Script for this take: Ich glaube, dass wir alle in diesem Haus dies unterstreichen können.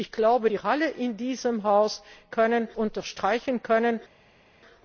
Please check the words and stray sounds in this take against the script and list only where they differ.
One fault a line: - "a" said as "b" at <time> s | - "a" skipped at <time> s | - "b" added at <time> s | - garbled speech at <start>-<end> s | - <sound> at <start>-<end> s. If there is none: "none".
- "dass" skipped at 0.5 s
- "dies" said as "können" at 2.3 s